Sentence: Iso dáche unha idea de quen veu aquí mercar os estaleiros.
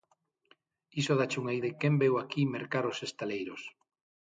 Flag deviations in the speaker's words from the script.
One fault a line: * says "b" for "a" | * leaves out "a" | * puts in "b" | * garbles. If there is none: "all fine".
* leaves out "idea"